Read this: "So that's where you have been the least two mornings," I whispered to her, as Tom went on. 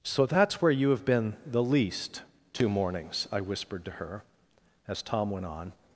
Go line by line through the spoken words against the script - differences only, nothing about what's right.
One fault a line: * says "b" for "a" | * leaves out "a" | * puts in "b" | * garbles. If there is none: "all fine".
all fine